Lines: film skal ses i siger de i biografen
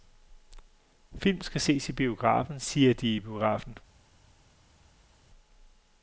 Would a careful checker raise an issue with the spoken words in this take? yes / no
yes